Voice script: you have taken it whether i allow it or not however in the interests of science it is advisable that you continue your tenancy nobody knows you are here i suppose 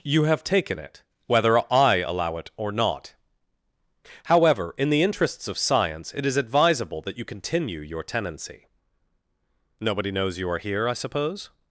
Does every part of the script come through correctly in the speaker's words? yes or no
yes